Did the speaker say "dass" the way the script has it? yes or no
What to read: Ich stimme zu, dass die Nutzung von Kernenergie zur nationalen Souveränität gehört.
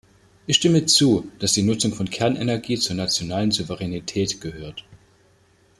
yes